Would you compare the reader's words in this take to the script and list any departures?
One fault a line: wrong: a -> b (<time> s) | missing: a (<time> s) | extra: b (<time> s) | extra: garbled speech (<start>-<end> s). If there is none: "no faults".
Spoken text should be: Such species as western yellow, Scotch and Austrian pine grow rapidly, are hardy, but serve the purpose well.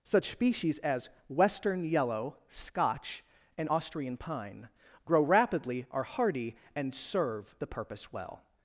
wrong: but -> and (6.7 s)